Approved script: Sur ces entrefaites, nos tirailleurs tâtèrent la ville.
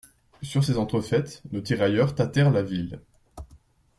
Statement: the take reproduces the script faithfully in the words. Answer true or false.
true